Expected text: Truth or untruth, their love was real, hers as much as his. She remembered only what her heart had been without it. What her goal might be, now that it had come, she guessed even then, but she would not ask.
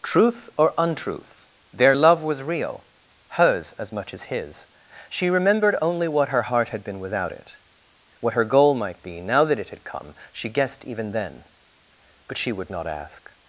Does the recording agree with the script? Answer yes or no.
yes